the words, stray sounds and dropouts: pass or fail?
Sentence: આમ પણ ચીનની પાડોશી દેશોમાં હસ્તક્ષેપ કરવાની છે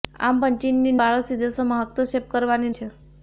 pass